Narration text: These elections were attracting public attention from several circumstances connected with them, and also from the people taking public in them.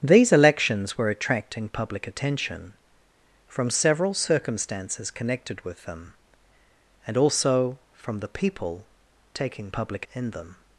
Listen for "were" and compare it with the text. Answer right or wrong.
right